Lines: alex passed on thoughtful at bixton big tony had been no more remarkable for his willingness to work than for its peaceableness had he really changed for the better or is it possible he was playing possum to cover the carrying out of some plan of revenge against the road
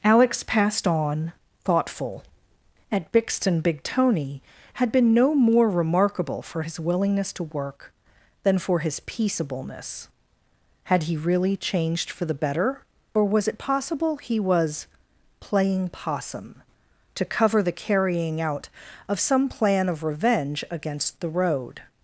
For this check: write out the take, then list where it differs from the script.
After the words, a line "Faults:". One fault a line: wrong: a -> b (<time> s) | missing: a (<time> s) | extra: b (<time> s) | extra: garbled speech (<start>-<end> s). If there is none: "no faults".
alex passed on thoughtful at bixton big tony had been no more remarkable for his willingness to work than for his peaceableness had he really changed for the better or was it possible he was playing possum to cover the carrying out of some plan of revenge against the road
Faults:
wrong: its -> his (8.8 s)
wrong: is -> was (13.2 s)